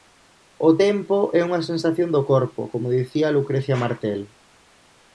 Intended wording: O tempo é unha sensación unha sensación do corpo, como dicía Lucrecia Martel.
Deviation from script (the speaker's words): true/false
true